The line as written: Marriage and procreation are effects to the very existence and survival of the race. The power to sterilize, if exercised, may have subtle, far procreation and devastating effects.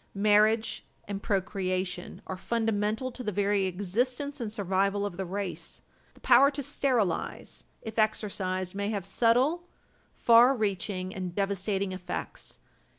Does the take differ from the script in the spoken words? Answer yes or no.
yes